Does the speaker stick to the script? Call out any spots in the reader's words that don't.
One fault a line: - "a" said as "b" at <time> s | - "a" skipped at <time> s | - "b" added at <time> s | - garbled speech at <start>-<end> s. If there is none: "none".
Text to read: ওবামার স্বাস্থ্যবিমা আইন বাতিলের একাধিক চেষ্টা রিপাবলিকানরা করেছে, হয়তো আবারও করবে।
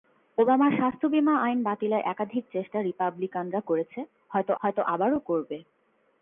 - "হয়তো" added at 4.6 s